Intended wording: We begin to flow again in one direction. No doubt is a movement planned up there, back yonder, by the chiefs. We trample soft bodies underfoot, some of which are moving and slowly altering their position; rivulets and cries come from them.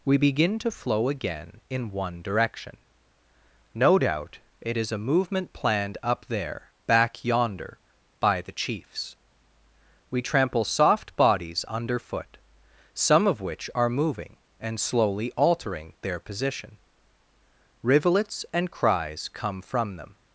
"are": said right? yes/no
yes